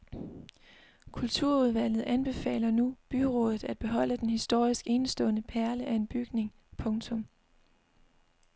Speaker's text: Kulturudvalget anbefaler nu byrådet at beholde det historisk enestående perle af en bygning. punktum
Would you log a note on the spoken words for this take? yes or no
yes